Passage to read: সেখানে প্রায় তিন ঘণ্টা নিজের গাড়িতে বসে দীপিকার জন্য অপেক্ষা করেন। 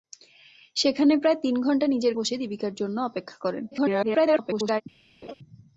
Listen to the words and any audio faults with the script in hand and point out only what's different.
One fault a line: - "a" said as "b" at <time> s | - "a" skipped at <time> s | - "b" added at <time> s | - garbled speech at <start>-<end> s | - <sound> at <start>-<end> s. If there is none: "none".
- "গাড়িতে" skipped at 2.1 s
- garbled speech at 3.7-4.8 s
- laugh at 5.2-5.3 s